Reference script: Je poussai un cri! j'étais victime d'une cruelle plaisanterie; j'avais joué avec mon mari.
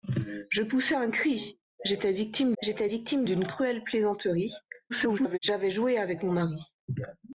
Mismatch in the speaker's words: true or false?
true